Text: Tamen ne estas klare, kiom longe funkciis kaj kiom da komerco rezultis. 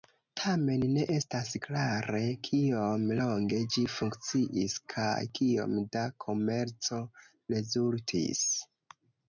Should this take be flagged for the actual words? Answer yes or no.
yes